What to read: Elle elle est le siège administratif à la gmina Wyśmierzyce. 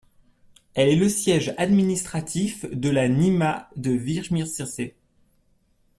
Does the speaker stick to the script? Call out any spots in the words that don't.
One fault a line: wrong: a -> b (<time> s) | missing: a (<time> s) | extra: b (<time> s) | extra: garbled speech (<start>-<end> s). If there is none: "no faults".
missing: elle (0.9 s)
wrong: à -> de (2.7 s)
extra: de (3.8 s)